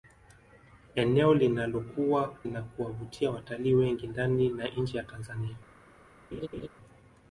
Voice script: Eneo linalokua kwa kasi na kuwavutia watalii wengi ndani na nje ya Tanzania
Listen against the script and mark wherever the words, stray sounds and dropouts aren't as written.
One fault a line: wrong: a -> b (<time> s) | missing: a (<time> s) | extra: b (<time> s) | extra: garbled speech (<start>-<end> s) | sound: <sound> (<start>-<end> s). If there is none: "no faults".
missing: kwa kasi (2.3 s)
sound: laugh (6.3-6.7 s)